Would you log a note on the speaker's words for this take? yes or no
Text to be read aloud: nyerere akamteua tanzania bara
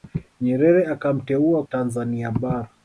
no